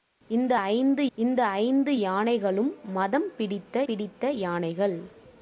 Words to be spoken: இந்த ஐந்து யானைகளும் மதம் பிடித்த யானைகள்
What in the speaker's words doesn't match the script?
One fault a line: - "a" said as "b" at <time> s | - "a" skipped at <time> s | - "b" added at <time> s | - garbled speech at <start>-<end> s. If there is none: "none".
- "இந்த ஐந்து" added at 1.2 s
- "பிடித்த" added at 3.9 s